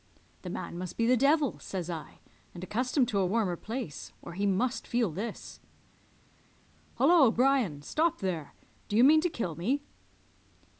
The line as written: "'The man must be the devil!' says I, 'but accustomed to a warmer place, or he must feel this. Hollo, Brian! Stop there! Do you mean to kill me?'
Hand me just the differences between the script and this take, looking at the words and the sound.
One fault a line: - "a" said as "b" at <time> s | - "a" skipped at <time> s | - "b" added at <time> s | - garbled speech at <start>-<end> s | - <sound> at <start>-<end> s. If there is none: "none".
- "but" said as "and" at 2.5 s